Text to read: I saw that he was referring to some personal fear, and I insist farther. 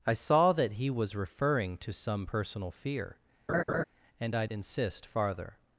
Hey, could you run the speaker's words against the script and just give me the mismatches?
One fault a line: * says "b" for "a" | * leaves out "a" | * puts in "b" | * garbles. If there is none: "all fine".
all fine